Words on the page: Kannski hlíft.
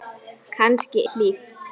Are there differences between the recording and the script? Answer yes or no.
no